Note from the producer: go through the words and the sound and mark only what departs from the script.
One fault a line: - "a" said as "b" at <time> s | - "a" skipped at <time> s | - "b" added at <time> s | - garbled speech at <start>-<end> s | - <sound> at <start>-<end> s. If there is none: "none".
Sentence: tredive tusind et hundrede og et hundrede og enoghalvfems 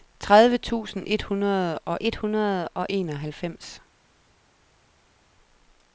none